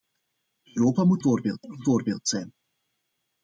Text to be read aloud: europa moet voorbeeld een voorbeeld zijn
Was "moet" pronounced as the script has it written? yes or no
yes